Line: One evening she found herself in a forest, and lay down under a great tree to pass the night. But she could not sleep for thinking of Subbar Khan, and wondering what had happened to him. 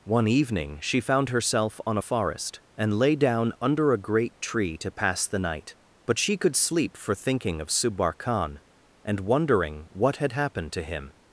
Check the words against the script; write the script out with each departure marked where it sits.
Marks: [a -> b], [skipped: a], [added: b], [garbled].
One evening she found herself [in -> on] a forest, and lay down under a great tree to pass the night. But she could [skipped: not] sleep for thinking of Subbar Khan, and wondering what had happened to him.